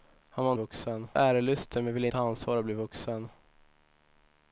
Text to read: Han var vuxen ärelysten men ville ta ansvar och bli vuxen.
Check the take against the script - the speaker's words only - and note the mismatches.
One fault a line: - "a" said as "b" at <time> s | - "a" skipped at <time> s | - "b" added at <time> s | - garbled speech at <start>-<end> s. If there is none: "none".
none